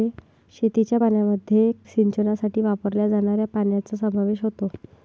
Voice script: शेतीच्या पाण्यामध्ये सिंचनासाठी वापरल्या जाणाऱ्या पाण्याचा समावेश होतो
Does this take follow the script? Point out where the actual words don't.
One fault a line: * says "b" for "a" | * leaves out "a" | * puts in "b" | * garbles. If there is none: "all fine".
all fine